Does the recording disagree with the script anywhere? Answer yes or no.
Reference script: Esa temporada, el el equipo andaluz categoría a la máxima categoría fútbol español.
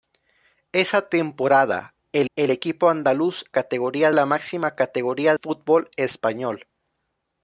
no